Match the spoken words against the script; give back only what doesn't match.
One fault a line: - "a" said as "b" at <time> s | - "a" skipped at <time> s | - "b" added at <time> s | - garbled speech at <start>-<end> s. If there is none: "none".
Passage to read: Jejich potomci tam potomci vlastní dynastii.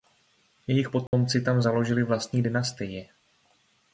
- "potomci" said as "založili" at 1.6 s